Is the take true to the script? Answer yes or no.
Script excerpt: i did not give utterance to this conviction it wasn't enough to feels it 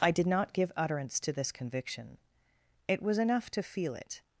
no